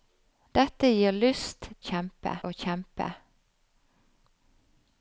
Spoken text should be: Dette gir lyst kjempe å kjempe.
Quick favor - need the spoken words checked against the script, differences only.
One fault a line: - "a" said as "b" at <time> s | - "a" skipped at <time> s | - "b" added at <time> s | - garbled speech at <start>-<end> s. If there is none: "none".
none